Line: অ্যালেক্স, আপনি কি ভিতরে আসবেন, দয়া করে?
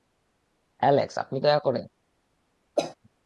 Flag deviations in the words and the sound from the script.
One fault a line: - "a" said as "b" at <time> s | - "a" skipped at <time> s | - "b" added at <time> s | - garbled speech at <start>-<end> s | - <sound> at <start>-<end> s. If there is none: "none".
- "কি ভিতরে আসবেন" skipped at 1.4 s
- cough at 2.8-2.9 s